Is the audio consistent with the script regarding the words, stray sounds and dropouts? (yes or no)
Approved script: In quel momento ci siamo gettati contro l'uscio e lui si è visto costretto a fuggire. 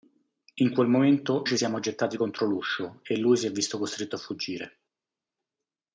yes